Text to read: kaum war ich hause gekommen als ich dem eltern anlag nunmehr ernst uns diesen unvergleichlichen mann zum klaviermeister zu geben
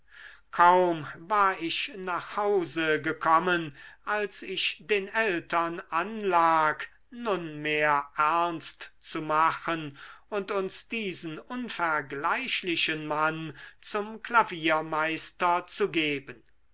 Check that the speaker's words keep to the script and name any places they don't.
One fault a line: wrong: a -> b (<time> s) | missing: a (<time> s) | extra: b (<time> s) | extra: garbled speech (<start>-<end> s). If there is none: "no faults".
extra: nach (1.9 s)
wrong: dem -> den (4.9 s)
extra: zu machen und (9.0 s)